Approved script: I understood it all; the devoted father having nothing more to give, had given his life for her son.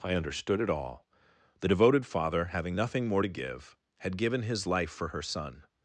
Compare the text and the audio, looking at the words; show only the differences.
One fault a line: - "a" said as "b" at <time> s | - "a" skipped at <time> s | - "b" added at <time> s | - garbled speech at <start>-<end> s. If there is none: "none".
none